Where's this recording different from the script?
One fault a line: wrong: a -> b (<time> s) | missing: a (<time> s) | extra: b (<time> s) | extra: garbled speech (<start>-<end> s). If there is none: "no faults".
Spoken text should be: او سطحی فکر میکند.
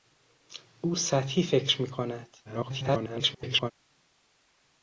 extra: garbled speech (2.4-3.7 s)